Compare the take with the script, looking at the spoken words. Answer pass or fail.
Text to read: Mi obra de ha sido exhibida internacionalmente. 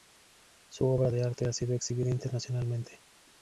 fail